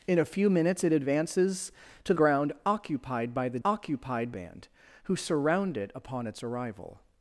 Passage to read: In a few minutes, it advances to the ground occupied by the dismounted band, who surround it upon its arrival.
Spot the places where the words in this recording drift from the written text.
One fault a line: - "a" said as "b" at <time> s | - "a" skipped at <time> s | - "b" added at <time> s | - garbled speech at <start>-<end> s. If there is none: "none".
- "the" skipped at 2.1 s
- "dismounted" said as "occupied" at 3.6 s